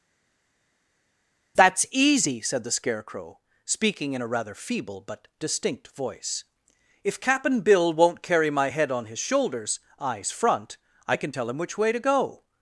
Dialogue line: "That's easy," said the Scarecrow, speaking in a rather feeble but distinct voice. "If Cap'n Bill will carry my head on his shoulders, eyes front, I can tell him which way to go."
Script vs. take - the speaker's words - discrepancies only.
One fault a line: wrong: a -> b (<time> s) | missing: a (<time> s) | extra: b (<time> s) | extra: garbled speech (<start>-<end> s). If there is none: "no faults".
wrong: will -> won't (7.9 s)